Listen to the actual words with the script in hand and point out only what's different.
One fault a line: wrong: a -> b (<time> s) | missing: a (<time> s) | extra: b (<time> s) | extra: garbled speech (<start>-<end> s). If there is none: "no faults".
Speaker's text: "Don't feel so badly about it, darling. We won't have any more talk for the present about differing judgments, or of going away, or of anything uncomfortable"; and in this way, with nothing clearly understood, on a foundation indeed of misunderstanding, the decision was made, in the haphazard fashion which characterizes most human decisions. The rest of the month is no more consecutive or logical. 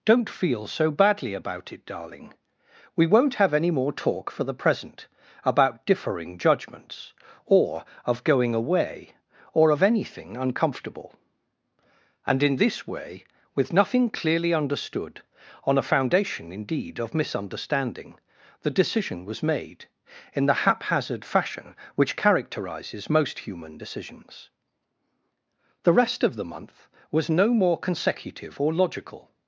wrong: is -> was (27.1 s)